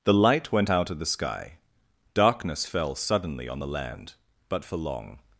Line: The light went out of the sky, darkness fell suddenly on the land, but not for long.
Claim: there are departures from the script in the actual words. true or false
true